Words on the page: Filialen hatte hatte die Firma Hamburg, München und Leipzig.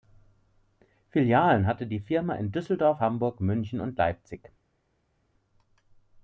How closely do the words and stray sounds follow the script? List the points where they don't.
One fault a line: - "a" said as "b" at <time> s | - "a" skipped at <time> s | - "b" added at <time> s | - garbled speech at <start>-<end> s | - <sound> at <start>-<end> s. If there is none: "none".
- "hatte" skipped at 1.9 s
- "in Düsseldorf" added at 2.3 s